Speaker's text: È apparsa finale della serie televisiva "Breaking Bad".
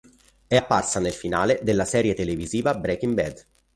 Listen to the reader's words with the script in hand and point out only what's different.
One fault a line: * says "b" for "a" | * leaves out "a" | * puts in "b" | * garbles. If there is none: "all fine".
* puts in "nel"